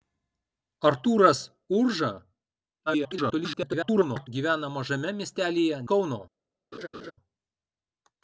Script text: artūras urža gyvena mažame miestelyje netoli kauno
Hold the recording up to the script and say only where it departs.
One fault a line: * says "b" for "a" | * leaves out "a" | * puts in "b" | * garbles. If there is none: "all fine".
* garbles
* leaves out "netoli"